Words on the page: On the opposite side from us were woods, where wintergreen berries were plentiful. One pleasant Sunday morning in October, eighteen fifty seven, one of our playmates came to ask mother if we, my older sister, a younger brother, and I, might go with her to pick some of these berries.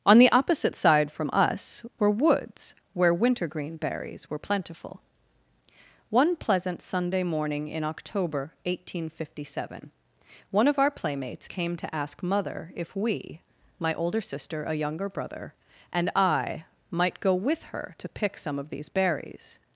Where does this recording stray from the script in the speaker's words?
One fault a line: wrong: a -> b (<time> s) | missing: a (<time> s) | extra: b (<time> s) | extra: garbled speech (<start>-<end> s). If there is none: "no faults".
no faults